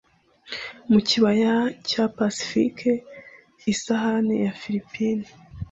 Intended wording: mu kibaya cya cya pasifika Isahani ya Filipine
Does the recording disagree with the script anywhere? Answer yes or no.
yes